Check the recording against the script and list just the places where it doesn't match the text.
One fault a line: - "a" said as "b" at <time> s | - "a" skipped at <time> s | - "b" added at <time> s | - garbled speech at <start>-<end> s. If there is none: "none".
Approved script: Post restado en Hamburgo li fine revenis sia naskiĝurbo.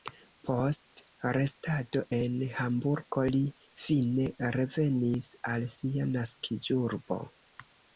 - "al" added at 5.6 s